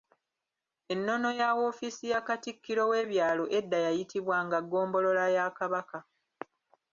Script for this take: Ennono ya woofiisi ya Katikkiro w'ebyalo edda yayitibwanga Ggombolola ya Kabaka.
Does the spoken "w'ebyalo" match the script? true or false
true